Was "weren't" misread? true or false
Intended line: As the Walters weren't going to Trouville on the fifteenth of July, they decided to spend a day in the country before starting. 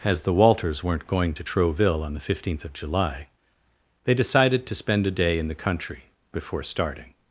false